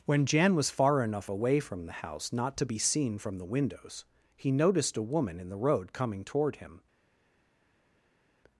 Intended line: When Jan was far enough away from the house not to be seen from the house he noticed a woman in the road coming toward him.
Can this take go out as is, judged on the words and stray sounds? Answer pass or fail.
fail